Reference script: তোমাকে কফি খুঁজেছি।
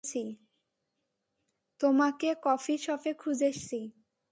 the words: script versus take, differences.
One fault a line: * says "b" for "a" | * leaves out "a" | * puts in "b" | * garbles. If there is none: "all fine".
* puts in "শপে"